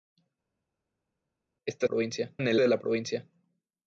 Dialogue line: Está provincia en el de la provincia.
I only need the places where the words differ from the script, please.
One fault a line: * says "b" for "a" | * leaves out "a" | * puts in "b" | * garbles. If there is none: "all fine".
all fine